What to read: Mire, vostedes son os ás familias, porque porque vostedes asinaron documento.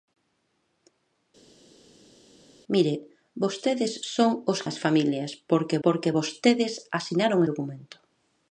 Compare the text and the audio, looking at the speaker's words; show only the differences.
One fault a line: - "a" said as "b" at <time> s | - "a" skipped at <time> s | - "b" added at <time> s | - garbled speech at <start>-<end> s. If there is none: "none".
none